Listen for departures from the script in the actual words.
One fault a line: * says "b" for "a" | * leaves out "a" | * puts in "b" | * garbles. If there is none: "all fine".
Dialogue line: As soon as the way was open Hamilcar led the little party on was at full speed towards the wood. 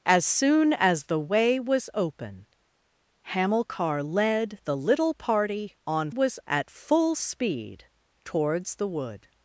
all fine